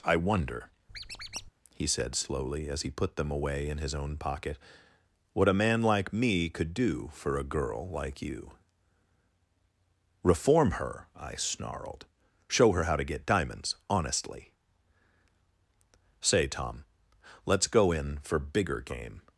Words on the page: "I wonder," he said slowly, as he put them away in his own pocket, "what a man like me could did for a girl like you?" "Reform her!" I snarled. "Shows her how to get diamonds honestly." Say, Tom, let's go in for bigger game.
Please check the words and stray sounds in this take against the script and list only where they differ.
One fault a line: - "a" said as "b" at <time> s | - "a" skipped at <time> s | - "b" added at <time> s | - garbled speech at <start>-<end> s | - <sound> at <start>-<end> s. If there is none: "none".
- squeak at 0.9-1.5 s
- "did" said as "do" at 6.7 s
- "Shows" said as "Show" at 12.5 s